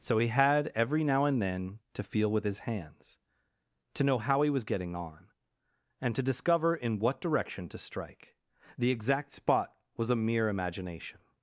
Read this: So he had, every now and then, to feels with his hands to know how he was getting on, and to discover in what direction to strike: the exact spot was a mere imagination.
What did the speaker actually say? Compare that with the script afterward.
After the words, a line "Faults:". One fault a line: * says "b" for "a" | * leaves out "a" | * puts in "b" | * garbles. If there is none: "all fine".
So he had, every now and then, to feel with his hands to know how he was getting on, and to discover in what direction to strike: the exact spot was a mere imagination.
Faults:
* says "feel" for "feels"